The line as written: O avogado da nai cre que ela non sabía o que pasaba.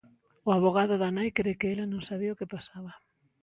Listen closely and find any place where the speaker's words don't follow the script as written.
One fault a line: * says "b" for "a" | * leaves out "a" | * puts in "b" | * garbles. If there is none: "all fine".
all fine